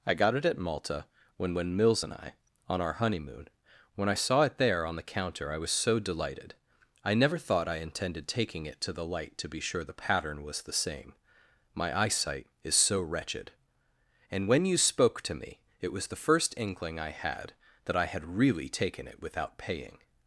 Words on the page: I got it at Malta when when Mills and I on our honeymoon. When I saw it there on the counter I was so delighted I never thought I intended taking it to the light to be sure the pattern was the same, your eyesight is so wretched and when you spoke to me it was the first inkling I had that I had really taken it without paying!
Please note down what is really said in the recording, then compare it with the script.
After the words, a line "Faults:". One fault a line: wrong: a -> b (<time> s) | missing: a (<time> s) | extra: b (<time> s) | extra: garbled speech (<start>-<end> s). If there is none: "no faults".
I got it at Malta when when Mills and I on our honeymoon. When I saw it there on the counter I was so delighted I never thought I intended taking it to the light to be sure the pattern was the same, my eyesight is so wretched and when you spoke to me it was the first inkling I had that I had really taken it without paying!
Faults:
wrong: your -> my (11.7 s)